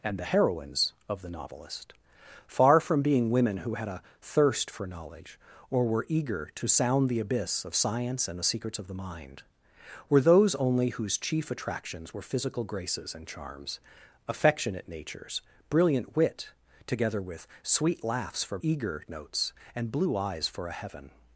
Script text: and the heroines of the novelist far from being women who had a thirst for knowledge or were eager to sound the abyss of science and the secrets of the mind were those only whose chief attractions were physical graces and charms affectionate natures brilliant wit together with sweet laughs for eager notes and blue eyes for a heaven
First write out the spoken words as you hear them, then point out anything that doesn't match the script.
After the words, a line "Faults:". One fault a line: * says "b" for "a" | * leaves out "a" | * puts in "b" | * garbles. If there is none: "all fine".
and the heroines of the novelist far from being women who had a thirst for knowledge or were eager to sound the abyss of science and the secrets of the mind were those only whose chief attractions were physical graces and charms affectionate natures brilliant wit together with sweet laughs for eager notes and blue eyes for a heaven
Faults:
all fine